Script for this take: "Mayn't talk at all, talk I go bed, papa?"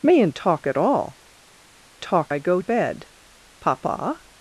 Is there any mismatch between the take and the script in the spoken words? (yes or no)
no